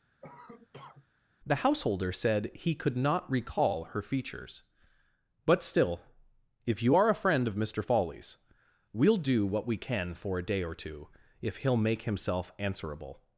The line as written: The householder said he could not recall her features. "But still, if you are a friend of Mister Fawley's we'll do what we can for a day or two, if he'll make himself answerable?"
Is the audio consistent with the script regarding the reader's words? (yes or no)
yes